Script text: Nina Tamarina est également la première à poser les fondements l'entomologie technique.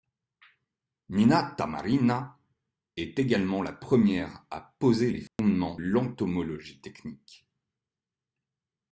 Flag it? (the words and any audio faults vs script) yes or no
yes